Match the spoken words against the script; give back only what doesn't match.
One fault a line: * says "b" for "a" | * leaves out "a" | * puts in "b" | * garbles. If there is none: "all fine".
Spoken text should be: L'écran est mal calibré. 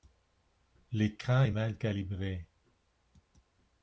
all fine